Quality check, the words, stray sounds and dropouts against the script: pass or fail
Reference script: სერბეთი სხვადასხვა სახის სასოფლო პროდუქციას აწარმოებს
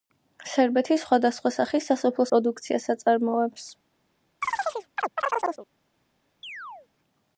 fail